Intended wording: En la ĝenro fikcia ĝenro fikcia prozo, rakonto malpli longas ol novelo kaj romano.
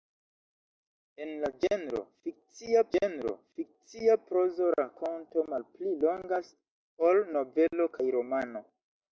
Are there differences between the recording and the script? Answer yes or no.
no